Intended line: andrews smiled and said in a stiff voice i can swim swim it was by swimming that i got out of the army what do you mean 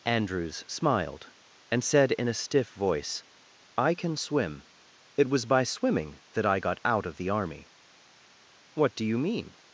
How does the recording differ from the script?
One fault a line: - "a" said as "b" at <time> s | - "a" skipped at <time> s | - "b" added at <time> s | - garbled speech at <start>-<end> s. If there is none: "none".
- "swim" skipped at 4.7 s